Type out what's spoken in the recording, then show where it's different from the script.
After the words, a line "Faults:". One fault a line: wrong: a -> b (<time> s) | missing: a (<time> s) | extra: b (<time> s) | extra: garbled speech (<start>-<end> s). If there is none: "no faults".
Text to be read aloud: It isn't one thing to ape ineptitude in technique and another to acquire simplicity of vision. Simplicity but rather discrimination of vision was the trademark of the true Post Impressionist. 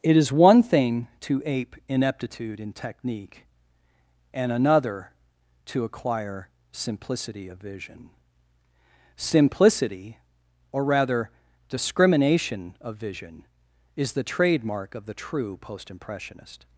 It is one thing to ape ineptitude in technique and another to acquire simplicity of vision. Simplicity or rather discrimination of vision is the trademark of the true Post Impressionist.
Faults:
wrong: isn't -> is (0.2 s)
wrong: but -> or (10.7 s)
wrong: was -> is (14.0 s)